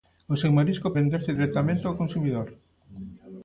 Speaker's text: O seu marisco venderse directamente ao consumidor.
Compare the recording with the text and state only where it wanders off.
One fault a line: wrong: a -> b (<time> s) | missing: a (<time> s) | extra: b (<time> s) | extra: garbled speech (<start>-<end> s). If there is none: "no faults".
no faults